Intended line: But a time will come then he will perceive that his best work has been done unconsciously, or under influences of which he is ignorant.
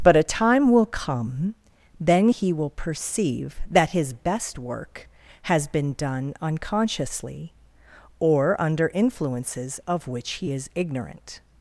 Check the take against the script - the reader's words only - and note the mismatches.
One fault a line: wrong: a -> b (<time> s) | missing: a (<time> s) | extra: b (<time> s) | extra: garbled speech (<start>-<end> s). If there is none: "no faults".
no faults